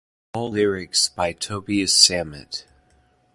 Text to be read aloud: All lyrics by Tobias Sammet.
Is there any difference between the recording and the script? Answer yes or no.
no